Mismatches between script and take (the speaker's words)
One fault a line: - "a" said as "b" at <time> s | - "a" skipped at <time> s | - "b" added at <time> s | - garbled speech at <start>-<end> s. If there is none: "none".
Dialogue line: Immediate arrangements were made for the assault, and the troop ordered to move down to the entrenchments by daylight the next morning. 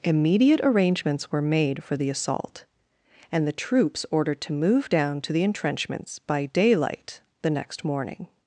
- "troop" said as "troops" at 3.5 s